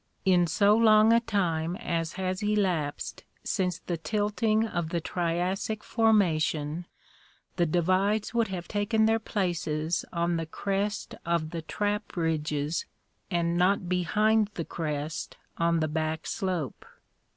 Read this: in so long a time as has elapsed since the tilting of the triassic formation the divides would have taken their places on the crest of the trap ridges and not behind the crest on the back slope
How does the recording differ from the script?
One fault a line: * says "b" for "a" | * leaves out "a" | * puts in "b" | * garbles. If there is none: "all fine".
all fine